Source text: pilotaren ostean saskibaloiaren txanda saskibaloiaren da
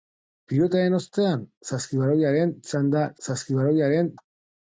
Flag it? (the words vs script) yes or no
no